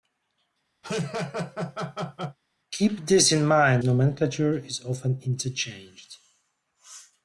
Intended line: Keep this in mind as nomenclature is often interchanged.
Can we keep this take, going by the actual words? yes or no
no